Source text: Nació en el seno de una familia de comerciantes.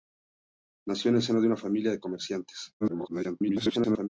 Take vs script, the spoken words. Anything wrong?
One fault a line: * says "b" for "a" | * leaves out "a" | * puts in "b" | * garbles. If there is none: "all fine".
* garbles